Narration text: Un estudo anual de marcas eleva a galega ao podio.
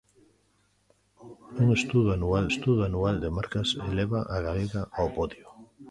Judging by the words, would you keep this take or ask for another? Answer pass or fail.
fail